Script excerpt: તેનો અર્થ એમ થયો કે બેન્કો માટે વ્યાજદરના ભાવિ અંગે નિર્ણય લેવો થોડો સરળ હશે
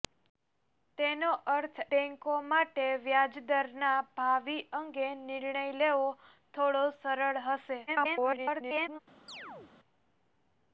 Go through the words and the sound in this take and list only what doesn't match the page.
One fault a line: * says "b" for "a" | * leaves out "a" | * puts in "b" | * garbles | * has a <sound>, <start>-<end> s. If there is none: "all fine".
* leaves out "એમ થયો કે"
* garbles
* has a chirp, 9.3-9.7 s